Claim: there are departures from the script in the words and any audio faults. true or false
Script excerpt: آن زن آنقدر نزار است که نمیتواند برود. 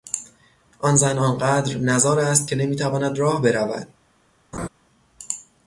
true